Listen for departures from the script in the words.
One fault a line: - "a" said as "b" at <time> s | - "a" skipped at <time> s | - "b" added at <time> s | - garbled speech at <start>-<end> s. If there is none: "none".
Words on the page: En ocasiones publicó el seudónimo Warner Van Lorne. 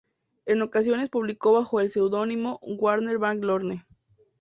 - "bajo" added at 1.5 s